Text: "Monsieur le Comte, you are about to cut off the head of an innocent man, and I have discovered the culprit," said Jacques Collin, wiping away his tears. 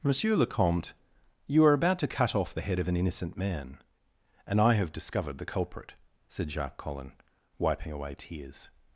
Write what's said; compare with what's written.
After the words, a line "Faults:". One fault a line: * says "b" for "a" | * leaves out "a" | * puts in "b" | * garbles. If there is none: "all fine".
"Monsieur le Comte, you are about to cut off the head of an innocent man, and I have discovered the culprit," said Jacques Collin, wiping away tears.
Faults:
* leaves out "his"